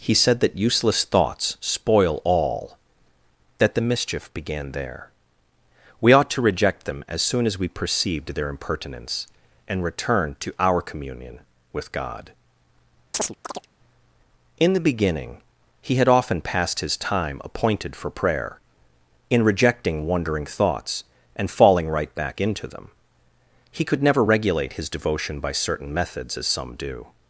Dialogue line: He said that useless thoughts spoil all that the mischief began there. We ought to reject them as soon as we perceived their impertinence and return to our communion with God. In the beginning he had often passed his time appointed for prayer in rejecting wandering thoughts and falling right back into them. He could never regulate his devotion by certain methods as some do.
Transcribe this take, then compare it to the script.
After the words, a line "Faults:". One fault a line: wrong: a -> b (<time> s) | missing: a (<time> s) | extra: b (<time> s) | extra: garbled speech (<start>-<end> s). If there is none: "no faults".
He said that useless thoughts spoil all that the mischief began there. We ought to reject them as soon as we perceived their impertinence and return to our communion with God. In the beginning he had often passed his time appointed for prayer in rejecting wandering thoughts and falling right back into them. He could never regulate his devotion by certain methods as some do.
Faults:
no faults